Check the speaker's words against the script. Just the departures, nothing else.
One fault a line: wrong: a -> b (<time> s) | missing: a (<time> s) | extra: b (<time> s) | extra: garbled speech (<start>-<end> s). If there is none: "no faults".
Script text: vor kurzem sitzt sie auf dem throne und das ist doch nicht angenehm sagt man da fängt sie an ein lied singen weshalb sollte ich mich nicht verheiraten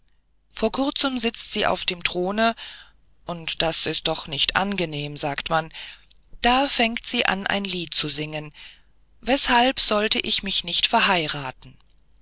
extra: zu (7.9 s)